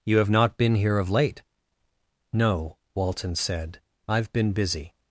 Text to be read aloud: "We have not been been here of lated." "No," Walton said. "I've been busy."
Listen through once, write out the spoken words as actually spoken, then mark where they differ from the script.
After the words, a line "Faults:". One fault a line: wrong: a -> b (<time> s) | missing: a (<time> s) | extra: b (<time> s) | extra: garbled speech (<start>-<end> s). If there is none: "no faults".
"You have not been here of late." "No," Walton said. "I've been busy."
Faults:
wrong: We -> You (0.1 s)
missing: been (0.8 s)
wrong: lated -> late (1.1 s)